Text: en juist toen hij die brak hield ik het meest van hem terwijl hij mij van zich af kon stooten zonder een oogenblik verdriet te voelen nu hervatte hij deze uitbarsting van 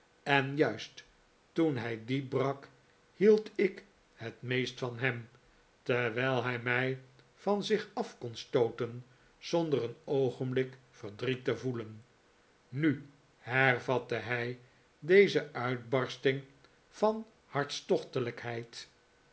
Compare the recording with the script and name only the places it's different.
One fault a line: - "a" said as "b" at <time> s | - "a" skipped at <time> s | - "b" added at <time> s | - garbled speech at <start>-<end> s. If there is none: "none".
none